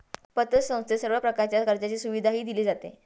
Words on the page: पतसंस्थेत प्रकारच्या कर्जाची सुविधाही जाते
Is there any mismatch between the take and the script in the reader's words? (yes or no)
yes